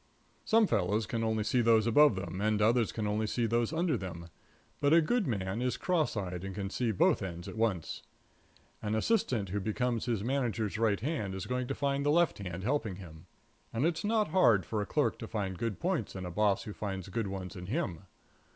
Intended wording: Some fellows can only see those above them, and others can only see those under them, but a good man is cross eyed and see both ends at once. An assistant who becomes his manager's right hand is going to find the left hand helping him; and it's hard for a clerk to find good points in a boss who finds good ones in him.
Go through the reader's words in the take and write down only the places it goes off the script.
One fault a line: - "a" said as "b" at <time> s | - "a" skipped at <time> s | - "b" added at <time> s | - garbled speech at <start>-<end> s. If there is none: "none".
- "can" added at 6.5 s
- "not" added at 14.0 s